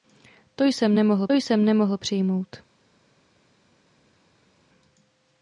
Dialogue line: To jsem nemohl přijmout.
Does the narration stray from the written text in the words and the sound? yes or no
yes